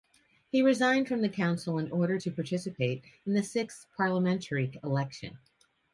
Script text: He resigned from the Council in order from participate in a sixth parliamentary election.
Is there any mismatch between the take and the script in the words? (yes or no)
yes